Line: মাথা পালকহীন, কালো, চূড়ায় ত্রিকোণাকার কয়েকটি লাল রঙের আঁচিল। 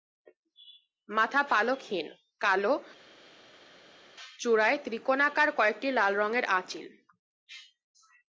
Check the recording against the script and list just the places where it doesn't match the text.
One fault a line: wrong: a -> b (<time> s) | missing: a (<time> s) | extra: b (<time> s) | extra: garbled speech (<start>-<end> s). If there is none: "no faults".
no faults